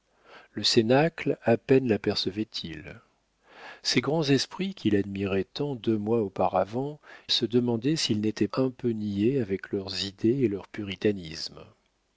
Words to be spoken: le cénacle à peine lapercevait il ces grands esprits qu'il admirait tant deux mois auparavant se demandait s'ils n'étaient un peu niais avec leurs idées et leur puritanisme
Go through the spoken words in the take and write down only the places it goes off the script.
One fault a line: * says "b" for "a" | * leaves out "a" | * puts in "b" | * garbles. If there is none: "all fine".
all fine